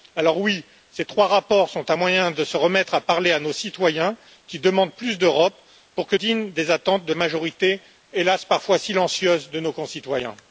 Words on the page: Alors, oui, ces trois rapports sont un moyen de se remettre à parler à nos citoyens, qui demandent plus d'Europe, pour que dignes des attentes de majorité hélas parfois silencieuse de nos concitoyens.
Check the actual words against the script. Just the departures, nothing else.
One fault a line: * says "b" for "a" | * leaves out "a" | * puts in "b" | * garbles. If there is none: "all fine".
all fine